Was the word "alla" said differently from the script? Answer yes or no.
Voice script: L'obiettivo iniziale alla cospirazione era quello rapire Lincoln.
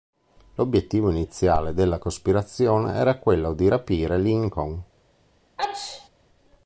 yes